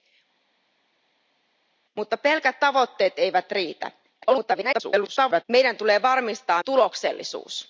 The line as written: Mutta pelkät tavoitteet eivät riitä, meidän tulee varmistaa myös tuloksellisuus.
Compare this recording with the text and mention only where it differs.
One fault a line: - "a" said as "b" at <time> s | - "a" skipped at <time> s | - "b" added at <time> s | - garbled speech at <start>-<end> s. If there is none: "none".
- garbled speech at 4.2-5.4 s
- "myös" skipped at 6.6 s